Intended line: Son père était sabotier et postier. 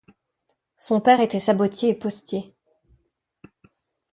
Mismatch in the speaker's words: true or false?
false